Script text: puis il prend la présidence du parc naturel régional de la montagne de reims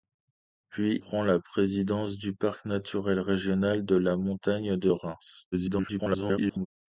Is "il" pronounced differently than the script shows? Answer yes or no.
yes